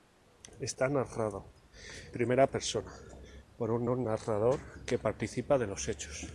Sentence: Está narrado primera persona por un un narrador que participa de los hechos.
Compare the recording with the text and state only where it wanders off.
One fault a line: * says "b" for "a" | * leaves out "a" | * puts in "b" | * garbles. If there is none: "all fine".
all fine